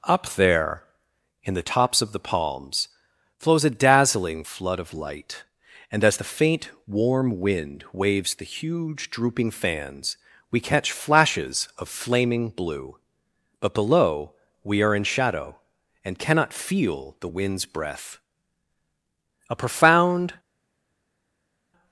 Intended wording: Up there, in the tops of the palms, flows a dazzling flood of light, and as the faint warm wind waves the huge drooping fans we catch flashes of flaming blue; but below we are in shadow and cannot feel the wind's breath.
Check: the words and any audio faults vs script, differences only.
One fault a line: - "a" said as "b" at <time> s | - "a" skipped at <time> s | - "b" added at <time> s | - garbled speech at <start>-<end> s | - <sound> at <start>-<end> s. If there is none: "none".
- "A profound" added at 19.5 s